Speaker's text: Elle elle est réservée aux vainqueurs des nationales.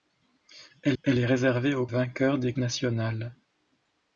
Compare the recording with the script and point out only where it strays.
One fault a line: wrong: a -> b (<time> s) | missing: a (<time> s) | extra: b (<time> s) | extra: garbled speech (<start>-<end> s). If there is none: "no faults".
no faults